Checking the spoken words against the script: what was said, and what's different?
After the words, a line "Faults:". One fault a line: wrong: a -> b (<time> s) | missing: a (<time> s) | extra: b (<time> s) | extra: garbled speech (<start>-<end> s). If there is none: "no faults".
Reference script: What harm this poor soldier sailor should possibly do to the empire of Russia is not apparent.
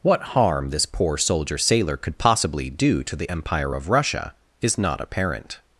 What harm this poor soldier sailor could possibly do to the empire of Russia is not apparent.
Faults:
wrong: should -> could (1.9 s)